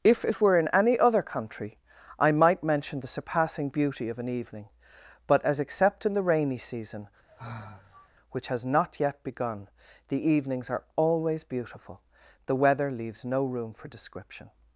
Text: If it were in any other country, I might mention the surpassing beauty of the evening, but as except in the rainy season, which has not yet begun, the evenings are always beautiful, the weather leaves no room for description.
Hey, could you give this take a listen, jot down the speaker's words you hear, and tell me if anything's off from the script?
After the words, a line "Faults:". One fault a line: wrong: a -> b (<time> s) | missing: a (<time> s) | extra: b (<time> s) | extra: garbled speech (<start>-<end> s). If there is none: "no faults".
If it were in any other country, I might mention the surpassing beauty of an evening, but as except in the rainy season, which has not yet begun, the evenings are always beautiful, the weather leaves no room for description.
Faults:
wrong: the -> an (4.2 s)